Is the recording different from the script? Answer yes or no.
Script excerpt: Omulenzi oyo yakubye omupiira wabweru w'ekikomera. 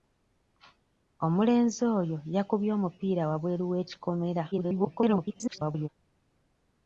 yes